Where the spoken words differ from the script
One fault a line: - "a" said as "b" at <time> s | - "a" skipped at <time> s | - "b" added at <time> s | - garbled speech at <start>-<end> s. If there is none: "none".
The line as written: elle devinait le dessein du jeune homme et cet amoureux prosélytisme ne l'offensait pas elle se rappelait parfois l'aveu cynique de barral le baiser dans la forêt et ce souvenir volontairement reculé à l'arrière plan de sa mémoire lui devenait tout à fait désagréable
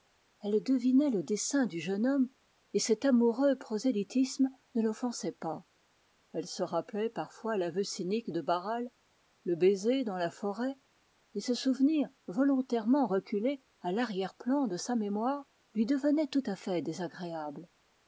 none